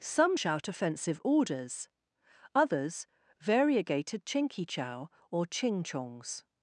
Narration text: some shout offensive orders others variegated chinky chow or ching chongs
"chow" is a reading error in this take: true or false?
false